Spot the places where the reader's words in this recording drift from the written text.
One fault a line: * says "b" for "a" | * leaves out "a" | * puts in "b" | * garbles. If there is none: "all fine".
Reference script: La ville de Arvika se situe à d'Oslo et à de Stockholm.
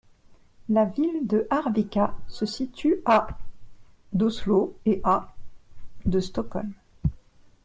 all fine